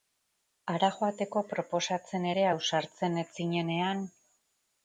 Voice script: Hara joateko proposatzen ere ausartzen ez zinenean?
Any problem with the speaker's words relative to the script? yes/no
no